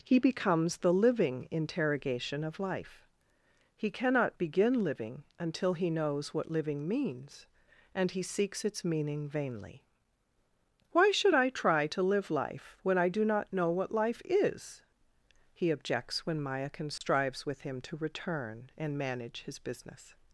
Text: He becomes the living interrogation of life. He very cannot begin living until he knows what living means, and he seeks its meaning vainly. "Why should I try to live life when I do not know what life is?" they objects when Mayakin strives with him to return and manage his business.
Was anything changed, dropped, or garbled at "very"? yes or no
yes